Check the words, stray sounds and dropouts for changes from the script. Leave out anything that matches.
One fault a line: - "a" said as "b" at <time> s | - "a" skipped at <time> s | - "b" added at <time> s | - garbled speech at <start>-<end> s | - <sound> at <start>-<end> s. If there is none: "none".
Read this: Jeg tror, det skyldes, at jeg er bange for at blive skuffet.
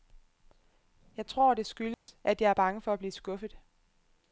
- dropout at 1.9-2.1 s